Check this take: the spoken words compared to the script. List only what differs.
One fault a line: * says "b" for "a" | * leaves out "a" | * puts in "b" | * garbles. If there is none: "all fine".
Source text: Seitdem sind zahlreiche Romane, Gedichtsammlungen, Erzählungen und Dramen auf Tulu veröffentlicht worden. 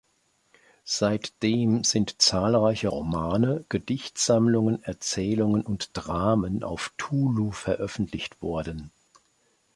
all fine